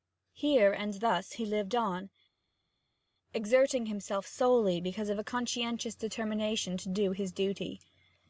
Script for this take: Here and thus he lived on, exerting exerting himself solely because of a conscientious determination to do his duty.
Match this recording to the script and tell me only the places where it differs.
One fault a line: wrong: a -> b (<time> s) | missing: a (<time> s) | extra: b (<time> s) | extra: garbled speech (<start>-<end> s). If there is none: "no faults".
missing: exerting (3.8 s)